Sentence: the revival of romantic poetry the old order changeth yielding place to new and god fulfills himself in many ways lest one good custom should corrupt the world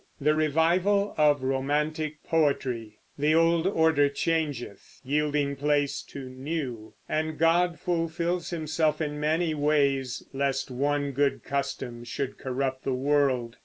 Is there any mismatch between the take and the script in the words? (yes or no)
no